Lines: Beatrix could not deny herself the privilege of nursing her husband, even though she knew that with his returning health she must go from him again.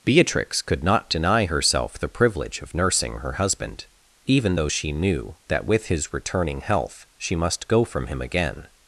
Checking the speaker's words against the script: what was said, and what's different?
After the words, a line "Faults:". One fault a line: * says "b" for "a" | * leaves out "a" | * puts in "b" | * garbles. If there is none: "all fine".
Beatrix could not deny herself the privilege of nursing her husband, even though she knew that with his returning health she must go from him again.
Faults:
all fine